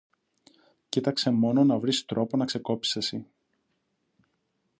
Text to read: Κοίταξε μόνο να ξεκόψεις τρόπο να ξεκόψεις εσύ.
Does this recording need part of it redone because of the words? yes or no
yes